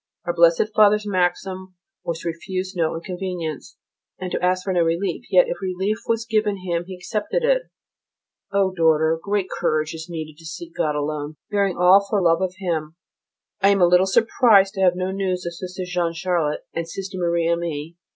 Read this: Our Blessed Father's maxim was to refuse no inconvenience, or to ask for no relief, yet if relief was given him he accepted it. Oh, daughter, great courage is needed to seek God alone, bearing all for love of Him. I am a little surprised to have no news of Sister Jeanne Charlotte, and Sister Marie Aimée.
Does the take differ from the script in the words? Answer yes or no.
yes